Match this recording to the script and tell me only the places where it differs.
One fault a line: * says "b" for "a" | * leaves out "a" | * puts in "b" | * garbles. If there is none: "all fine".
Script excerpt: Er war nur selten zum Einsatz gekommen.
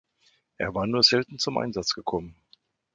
all fine